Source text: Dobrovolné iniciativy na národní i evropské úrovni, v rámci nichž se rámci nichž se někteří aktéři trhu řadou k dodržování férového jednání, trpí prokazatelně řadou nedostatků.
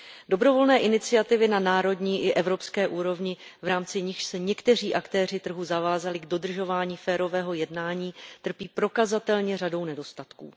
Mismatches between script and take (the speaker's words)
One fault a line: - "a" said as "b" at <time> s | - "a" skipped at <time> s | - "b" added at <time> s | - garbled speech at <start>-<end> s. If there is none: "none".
- "rámci nichž se" skipped at 4.4 s
- "řadou" said as "zavázali" at 5.6 s